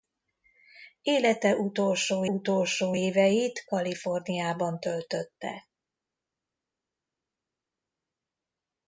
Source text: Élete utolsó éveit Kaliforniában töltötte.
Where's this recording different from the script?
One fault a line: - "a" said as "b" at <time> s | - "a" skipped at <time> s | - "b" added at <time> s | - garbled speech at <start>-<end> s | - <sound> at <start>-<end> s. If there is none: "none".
- "utolsó" added at 2.2 s